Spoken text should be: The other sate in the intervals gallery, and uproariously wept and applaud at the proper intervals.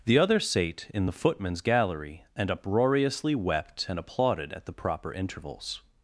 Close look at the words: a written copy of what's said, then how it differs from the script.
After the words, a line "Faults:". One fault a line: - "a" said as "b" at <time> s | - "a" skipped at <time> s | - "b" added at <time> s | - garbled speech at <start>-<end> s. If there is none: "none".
The other sate in the footman's gallery, and uproariously wept and applauded at the proper intervals.
Faults:
- "intervals" said as "footman's" at 1.1 s
- "applaud" said as "applauded" at 4.0 s